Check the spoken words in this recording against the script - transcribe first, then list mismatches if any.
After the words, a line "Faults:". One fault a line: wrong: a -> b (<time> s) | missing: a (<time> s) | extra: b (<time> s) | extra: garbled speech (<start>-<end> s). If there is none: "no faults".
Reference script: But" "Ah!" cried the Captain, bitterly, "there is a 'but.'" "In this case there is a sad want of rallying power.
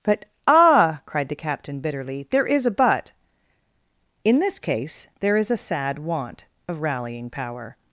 But" "Ah!" cried the Captain, bitterly, "there is a 'but.'" "In this case there is a sad want of rallying power.
Faults:
no faults